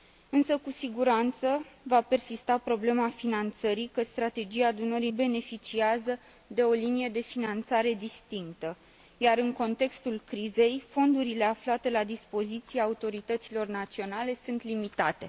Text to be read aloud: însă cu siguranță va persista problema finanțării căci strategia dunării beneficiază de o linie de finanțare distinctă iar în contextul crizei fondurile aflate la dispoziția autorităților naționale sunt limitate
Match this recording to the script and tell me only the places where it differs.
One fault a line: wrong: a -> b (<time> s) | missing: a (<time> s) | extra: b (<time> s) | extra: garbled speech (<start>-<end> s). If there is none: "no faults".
no faults